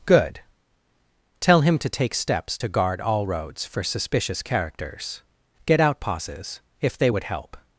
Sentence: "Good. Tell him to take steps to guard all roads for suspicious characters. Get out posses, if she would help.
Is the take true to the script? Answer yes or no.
no